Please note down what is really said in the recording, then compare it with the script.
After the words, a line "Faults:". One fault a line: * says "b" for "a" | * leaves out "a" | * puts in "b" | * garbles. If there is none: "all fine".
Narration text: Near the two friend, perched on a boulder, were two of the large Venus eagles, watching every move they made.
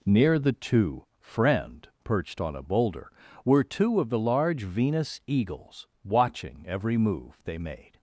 Near the two friend, perched on a boulder, were two of the large Venus eagles, watching every move they made.
Faults:
all fine